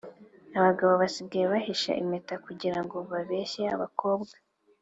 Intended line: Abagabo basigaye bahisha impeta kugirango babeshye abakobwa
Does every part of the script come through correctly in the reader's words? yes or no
yes